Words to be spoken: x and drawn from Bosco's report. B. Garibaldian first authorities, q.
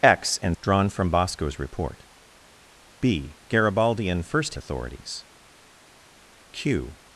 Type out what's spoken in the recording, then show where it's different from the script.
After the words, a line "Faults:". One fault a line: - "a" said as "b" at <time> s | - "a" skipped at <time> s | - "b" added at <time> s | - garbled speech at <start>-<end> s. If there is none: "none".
x and drawn from Bosco's report. B. Garibaldian first authorities, q.
Faults:
none